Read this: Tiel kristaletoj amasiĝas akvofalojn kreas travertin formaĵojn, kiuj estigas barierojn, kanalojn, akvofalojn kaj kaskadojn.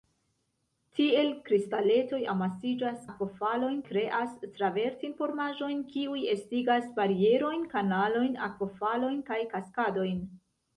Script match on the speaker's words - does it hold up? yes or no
yes